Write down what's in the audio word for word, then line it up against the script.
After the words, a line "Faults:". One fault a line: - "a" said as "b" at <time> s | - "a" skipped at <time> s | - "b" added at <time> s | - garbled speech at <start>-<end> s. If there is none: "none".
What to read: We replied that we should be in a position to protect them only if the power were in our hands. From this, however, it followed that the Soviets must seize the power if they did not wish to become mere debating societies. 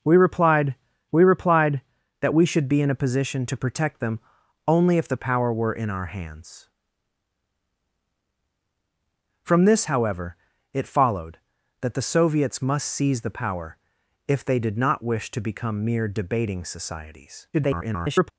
We replied we replied that we should be in a position to protect them only if the power were in our hands. From this, however, it followed that the Soviets must seize the power if they did not wish to become mere debating societies. [garbled]
Faults:
- "we replied" added at 1.1 s
- garbled speech at 17.5-18.3 s